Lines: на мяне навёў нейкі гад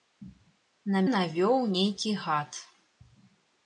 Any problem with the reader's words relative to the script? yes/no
yes